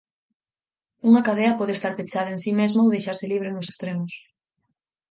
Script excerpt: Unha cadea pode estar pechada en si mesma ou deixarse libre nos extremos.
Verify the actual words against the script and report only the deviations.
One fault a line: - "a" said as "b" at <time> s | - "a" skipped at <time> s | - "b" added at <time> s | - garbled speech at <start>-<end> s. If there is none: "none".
none